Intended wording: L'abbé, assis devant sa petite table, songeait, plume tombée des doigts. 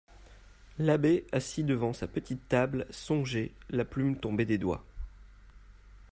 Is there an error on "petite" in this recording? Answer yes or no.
no